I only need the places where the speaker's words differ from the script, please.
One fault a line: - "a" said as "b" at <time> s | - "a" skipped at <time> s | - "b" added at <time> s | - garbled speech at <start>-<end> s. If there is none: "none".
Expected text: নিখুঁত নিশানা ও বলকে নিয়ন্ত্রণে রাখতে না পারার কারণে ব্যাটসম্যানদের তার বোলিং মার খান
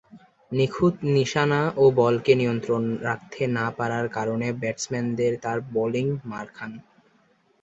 none